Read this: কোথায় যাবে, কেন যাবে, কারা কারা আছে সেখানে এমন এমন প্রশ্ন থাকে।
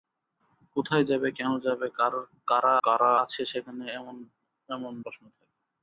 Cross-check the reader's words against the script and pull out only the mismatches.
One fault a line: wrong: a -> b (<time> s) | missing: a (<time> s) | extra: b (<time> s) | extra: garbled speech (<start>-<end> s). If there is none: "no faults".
no faults